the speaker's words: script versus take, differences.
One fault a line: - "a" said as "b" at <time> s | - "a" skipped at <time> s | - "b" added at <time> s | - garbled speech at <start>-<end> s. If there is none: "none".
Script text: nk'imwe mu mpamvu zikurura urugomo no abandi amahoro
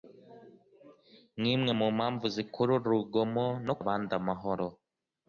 none